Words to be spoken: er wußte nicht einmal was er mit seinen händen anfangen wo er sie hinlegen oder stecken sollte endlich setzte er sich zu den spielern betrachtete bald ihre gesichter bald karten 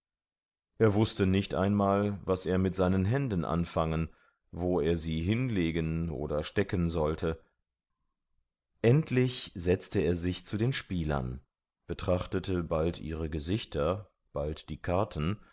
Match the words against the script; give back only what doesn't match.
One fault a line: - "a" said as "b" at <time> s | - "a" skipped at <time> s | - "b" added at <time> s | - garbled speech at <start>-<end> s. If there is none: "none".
- "die" added at 14.7 s